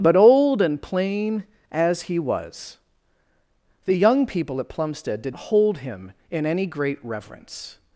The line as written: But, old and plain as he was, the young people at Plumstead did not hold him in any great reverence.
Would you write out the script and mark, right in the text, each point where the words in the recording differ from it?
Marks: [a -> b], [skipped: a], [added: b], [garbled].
But, old and plain as he was, the young people at Plumstead did [skipped: not] hold him in any great reverence.